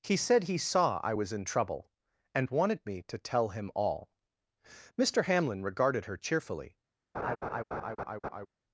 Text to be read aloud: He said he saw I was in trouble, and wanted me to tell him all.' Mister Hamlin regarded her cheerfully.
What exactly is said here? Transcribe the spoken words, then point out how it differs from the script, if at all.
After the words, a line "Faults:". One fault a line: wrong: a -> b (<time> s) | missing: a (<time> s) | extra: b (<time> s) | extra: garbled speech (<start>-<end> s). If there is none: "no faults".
He said he saw I was in trouble, and wanted me to tell him all.' Mister Hamlin regarded her cheerfully.
Faults:
no faults